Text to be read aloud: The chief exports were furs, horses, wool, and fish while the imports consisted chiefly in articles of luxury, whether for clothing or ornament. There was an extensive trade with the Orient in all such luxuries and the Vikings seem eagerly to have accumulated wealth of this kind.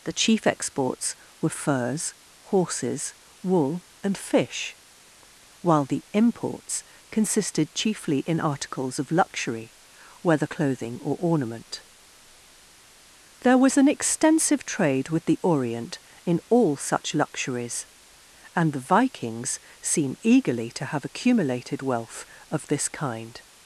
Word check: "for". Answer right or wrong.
wrong